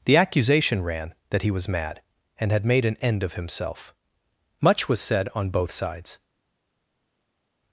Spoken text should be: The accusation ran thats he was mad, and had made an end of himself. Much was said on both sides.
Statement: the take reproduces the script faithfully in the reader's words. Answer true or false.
false